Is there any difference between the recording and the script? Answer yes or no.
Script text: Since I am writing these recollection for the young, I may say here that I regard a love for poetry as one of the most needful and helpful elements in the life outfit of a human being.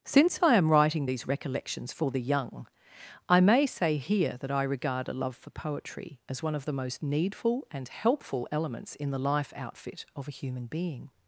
yes